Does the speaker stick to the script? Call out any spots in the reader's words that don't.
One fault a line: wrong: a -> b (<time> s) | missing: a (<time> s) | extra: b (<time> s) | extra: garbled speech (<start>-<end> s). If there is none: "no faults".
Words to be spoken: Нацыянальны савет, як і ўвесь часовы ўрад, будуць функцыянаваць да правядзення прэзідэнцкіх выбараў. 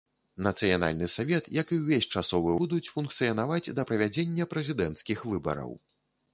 missing: ўрад (2.5 s)